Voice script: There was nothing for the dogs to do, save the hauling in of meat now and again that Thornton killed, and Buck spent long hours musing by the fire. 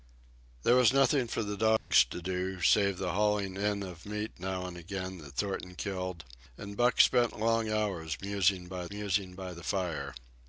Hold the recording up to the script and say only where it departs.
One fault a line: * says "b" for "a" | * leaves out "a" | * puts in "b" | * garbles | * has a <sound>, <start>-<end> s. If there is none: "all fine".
* has a dropout, 1.8-1.9 s
* puts in "musing by"